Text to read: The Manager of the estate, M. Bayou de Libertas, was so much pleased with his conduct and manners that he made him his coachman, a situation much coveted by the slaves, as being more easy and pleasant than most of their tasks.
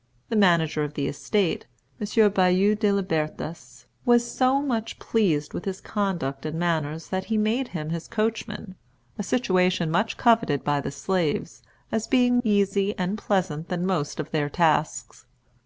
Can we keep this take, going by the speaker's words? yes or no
no